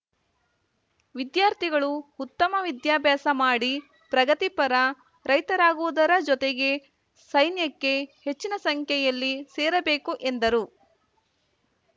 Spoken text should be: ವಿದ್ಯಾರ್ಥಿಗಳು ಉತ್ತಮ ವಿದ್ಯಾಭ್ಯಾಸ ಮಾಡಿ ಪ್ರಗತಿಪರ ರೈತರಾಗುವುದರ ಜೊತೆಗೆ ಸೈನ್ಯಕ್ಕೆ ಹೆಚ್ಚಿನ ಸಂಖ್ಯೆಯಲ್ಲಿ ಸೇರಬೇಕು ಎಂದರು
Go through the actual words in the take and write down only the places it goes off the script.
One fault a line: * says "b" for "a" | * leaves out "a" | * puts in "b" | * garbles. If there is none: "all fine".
all fine